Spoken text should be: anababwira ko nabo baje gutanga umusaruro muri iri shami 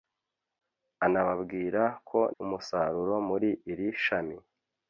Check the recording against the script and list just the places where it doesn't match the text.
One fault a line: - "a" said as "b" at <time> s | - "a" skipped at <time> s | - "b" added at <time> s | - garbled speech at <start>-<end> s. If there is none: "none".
- "nabo baje gutanga" skipped at 2.2 s